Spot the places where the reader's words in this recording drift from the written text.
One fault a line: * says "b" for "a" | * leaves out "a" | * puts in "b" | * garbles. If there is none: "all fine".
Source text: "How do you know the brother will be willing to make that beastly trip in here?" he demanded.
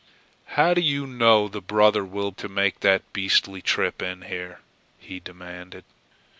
* leaves out "be willing"